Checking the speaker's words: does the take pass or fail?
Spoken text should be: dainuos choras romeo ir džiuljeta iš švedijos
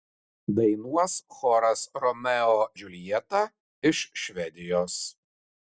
fail